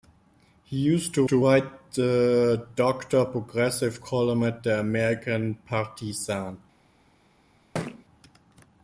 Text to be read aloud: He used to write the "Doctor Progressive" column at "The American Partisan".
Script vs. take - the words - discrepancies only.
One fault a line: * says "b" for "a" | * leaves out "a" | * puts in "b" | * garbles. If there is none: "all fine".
* puts in "to"